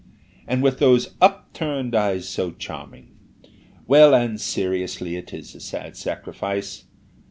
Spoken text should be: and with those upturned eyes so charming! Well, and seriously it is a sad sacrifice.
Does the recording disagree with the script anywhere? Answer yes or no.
no